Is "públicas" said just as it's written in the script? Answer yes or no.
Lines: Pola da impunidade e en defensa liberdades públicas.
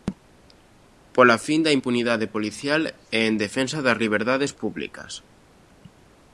yes